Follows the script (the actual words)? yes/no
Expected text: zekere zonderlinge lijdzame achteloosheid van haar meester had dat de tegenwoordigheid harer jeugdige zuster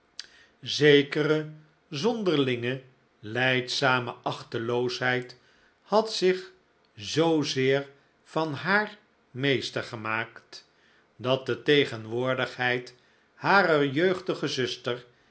no